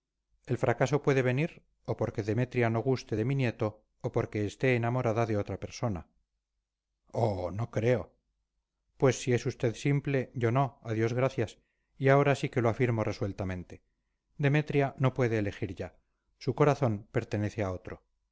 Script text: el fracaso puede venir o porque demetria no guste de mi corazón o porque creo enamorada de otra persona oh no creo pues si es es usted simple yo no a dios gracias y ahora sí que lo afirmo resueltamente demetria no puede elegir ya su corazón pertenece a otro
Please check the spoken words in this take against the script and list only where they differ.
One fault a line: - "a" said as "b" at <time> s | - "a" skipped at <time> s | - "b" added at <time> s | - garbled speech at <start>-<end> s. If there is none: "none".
- "corazón" said as "nieto" at 3.3 s
- "creo" said as "esté" at 4.5 s
- "es" skipped at 9.4 s